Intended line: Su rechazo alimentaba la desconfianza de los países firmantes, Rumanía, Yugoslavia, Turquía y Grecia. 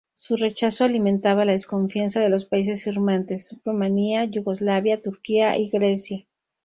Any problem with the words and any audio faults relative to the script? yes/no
no